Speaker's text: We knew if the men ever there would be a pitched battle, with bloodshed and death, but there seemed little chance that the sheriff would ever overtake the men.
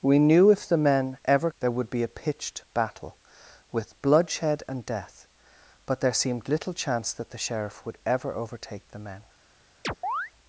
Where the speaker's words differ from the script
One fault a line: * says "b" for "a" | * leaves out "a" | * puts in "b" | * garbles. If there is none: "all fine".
all fine